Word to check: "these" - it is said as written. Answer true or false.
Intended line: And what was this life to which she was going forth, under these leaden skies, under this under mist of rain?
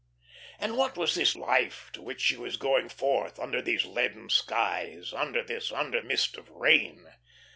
true